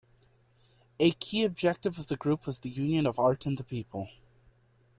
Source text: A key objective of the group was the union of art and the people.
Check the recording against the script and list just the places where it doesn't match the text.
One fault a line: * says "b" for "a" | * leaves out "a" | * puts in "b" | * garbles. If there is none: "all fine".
all fine